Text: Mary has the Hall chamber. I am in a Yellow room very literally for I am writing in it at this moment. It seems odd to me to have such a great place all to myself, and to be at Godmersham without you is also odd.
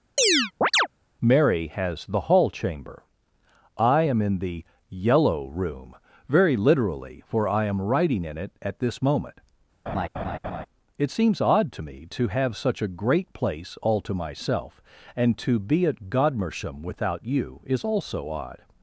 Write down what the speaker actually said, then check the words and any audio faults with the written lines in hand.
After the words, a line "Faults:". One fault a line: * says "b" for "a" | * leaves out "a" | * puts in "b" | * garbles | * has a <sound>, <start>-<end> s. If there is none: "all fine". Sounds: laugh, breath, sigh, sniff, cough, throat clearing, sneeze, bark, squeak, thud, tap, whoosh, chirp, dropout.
Mary has the Hall chamber. I am in the Yellow room very literally for I am writing in it at this moment. It seems odd to me to have such a great place all to myself, and to be at Godmersham without you is also odd.
Faults:
* has a chirp, 0.2-0.9 s
* says "the" for "a"
* has a laugh, 9.9-10.7 s